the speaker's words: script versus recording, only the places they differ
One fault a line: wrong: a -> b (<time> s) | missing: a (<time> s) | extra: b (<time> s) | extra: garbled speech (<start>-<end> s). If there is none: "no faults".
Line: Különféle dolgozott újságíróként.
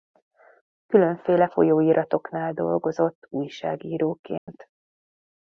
extra: folyóiratoknál (1.4 s)